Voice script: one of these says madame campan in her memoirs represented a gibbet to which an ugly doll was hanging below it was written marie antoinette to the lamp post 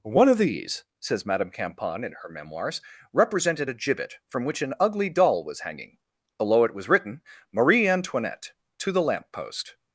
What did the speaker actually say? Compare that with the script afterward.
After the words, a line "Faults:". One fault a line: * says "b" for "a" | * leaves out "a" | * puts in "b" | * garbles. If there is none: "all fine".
one of these says madame campan in her memoirs represented a gibbet from which an ugly doll was hanging below it was written marie antoinette to the lamp post
Faults:
* says "from" for "to"